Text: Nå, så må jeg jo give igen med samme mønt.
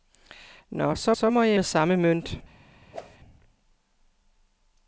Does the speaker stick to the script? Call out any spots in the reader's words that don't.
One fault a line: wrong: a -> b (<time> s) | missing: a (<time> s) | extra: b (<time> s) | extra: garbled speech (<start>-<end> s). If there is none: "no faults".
extra: så (1.1 s)
missing: jo give igen (1.6 s)